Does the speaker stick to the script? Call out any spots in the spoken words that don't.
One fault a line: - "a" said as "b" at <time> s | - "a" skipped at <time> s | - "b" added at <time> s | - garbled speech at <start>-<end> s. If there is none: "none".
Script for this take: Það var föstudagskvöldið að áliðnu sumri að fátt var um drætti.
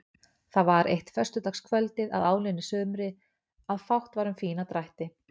- "eitt" added at 0.9 s
- "fína" added at 4.4 s